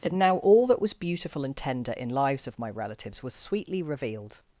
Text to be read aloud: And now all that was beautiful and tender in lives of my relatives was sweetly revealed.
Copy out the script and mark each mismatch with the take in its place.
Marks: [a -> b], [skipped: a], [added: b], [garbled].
And now all that was beautiful and tender in lives of my relatives was sweetly revealed.